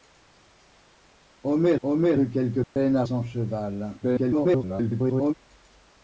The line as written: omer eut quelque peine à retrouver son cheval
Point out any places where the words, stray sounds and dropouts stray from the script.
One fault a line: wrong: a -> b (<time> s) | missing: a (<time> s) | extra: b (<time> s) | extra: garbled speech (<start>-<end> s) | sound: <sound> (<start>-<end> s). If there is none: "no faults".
extra: omer (1.8 s)
sound: dropout (2.6-2.8 s)
missing: retrouver (3.0 s)
extra: garbled speech (4.0-5.3 s)